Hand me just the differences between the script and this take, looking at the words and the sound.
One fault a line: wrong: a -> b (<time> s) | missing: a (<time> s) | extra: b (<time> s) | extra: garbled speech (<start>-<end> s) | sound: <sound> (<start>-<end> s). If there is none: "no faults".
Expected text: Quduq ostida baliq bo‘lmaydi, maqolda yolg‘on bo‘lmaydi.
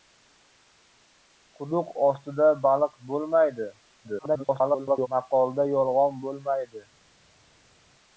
extra: garbled speech (4.0-5.1 s)